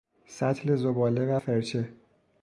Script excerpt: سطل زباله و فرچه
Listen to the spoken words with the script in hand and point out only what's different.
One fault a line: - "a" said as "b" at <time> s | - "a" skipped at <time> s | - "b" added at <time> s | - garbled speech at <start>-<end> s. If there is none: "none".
none